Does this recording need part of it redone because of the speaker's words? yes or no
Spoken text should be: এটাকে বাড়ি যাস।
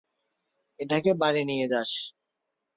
yes